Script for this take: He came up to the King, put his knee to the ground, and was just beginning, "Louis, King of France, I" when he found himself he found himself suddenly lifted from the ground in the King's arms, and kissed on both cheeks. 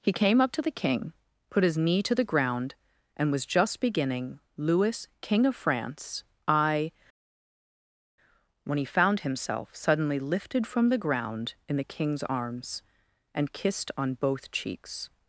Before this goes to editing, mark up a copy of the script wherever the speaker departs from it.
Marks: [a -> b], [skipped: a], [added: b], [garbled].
He came up to the King, put his knee to the ground, and was just beginning, "Louis, King of France, I" when he found himself [skipped: he found himself] suddenly lifted from the ground in the King's arms, and kissed on both cheeks.